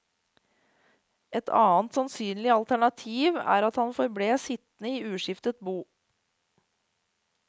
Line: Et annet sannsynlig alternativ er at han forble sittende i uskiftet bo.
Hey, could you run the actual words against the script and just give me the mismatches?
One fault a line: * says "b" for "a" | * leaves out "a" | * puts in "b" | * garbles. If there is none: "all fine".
all fine